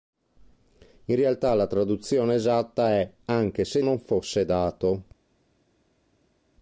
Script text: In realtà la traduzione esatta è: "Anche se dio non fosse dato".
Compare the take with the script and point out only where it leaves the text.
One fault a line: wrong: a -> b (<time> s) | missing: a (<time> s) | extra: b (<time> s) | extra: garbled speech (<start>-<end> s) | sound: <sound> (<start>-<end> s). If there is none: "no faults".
missing: dio (3.8 s)